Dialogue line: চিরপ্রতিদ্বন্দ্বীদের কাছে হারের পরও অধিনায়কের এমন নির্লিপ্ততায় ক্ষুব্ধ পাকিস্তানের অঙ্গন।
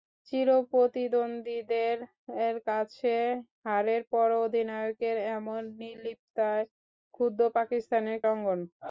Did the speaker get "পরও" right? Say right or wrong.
right